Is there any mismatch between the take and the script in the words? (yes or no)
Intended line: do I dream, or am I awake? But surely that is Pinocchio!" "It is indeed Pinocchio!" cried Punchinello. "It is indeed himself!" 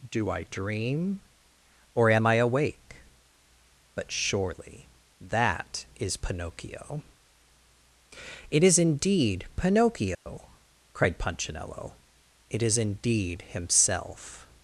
no